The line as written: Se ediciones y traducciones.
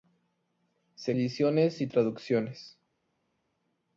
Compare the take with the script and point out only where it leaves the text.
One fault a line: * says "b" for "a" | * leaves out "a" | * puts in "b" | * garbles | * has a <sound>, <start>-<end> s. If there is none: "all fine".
all fine